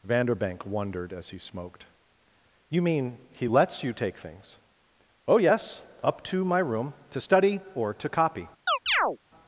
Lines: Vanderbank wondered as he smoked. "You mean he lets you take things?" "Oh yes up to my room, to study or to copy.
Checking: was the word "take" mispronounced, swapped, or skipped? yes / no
no